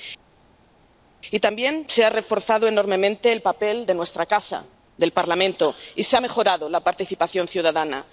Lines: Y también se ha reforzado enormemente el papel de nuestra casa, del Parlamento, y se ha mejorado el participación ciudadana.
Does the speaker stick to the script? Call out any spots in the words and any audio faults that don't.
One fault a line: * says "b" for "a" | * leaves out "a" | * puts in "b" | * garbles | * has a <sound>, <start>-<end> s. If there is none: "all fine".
* says "la" for "el"